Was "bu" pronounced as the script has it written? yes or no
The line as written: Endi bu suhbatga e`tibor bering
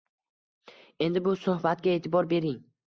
yes